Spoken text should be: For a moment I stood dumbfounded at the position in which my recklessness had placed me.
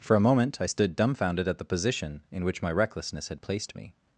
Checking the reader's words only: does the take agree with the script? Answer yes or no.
yes